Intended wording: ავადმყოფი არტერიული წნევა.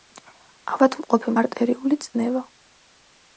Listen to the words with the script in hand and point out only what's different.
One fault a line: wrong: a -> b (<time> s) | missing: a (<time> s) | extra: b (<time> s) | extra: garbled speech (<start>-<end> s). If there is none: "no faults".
no faults